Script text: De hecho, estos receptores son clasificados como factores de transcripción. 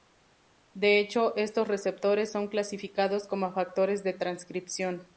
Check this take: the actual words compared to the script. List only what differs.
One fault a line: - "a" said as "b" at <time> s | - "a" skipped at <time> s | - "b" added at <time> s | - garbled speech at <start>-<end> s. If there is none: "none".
none